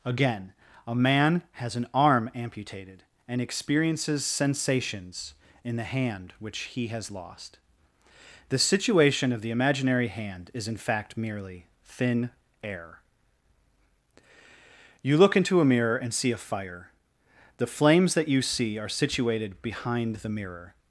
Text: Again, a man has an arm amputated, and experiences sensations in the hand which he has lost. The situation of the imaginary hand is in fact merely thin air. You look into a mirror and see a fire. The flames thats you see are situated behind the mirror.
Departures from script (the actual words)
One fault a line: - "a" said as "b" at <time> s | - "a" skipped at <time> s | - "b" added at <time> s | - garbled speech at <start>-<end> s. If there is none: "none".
- "thats" said as "that" at 18.1 s